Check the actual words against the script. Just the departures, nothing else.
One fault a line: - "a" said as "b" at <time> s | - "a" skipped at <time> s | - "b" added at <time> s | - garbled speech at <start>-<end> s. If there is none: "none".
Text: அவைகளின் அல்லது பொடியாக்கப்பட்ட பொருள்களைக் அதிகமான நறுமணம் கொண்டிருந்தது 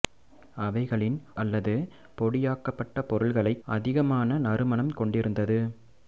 none